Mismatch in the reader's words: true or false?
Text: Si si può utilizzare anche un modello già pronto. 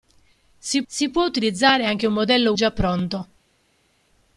false